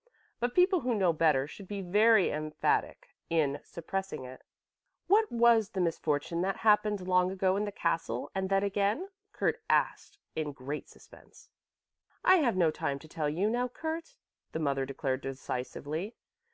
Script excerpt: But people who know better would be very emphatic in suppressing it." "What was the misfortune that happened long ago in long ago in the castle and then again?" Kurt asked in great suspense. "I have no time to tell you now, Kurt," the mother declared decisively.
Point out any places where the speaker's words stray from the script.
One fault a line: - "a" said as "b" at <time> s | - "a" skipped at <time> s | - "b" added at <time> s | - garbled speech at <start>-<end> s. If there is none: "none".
- "would" said as "should" at 1.4 s
- "long ago in" skipped at 7.7 s